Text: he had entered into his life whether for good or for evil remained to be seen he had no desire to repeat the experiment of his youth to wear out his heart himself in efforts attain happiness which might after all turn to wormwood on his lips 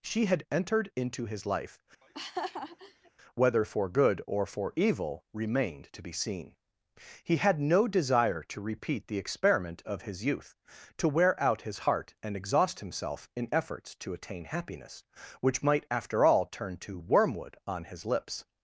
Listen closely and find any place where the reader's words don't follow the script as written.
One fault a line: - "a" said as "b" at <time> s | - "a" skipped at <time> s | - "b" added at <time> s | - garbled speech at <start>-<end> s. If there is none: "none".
- "he" said as "she" at 0.0 s
- "and exhaust" added at 12.2 s
- "to" added at 14.0 s